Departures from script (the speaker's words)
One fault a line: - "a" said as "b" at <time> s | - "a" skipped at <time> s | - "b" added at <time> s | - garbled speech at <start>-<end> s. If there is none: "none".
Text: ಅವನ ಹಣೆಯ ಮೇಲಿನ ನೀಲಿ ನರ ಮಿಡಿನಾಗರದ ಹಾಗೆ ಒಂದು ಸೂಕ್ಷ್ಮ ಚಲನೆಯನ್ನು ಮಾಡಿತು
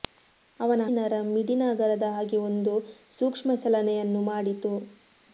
- "ಹಣೆಯ ಮೇಲಿನ ನೀಲಿ" skipped at 0.8 s